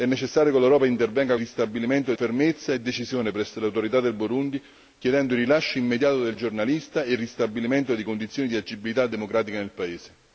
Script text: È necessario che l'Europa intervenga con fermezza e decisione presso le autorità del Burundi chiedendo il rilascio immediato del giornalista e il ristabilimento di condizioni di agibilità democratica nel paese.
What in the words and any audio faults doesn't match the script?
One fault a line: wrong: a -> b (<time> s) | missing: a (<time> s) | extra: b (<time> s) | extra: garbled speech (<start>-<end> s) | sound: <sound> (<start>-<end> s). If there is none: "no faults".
wrong: con -> ristabilimento (1.4 s)